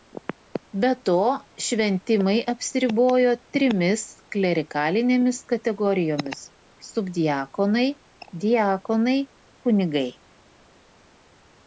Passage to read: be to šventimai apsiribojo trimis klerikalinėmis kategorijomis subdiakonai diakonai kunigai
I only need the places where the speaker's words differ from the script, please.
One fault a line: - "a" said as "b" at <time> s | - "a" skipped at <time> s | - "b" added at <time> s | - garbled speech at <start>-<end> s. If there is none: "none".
none